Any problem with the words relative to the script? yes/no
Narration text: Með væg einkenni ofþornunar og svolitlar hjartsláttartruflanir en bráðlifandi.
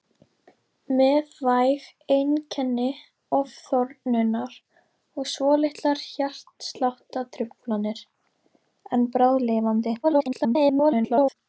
yes